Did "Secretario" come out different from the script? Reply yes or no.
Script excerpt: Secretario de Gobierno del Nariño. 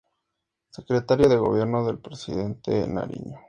no